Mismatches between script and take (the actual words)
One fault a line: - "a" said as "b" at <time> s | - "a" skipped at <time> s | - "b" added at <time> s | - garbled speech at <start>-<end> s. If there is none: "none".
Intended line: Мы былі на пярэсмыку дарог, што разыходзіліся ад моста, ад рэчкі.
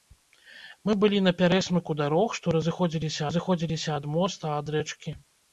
- "разыходзіліся" added at 3.3 s